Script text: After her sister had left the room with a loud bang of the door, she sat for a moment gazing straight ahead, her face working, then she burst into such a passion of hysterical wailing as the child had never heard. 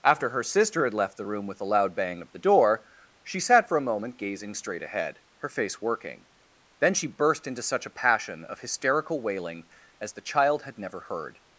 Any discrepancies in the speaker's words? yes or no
no